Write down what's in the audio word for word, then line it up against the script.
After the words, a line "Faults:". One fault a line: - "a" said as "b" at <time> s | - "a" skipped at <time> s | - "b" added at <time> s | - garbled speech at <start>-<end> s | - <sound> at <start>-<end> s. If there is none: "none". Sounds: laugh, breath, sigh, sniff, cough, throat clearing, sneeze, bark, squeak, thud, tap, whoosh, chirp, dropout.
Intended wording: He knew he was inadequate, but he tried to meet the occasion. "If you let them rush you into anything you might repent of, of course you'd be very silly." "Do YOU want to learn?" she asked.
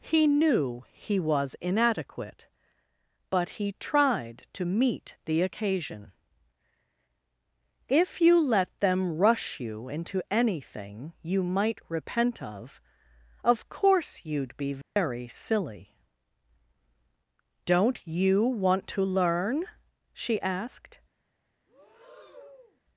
He knew he was inadequate, but he tried to meet the occasion. "If you let them rush you into anything you might repent of, of course you'd be very silly." "Don't YOU want to learn?" she asked.
Faults:
- dropout at 14.8-15.0 s
- "Do" said as "Don't" at 17.6 s
- breath at 21.7-22.8 s